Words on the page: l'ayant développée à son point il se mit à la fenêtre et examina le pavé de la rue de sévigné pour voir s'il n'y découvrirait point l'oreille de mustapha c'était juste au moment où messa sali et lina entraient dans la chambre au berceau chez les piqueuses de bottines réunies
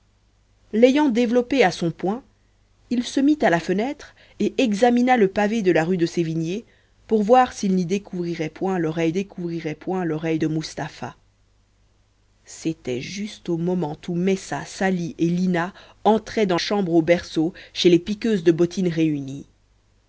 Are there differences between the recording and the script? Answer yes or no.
yes